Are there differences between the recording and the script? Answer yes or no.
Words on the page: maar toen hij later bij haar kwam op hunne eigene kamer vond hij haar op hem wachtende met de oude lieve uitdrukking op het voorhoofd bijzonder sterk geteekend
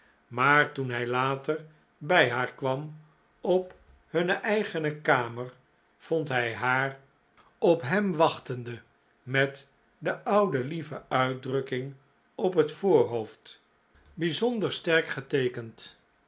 no